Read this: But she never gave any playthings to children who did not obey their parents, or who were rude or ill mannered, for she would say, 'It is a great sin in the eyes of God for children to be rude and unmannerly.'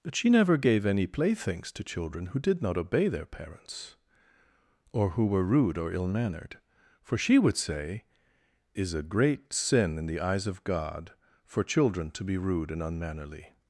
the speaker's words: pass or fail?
fail